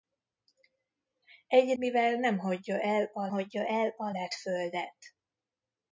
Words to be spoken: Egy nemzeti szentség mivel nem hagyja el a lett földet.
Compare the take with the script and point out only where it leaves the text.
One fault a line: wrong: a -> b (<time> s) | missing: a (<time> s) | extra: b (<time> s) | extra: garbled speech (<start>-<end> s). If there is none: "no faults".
wrong: nemzeti szentség mivel nem -> mivel nem hagyja el a (1.8 s)